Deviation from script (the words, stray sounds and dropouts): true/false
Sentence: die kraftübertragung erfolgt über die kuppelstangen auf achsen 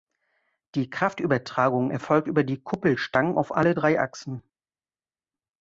true